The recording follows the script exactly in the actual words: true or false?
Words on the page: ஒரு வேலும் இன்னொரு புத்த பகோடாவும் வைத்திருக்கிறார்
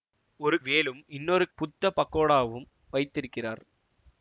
true